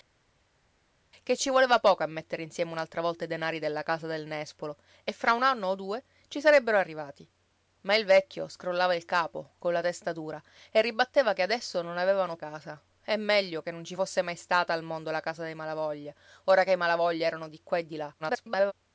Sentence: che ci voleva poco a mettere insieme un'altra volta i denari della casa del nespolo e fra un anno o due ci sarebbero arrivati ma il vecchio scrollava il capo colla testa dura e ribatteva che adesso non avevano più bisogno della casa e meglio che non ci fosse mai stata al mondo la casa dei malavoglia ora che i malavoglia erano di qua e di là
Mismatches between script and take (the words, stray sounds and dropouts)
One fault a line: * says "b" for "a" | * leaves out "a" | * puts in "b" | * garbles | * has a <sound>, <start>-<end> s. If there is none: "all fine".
* leaves out "più bisogno della"
* garbles